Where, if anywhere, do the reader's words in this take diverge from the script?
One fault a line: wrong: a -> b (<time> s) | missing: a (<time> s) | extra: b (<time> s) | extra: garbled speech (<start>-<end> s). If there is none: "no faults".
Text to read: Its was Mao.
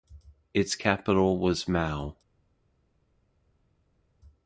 extra: capital (0.8 s)